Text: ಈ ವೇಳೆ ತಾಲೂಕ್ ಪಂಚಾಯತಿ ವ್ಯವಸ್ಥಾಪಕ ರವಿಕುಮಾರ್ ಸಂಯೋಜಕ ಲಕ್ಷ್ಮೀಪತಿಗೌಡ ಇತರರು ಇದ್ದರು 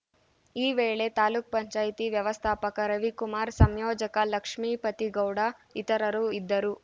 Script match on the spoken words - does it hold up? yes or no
yes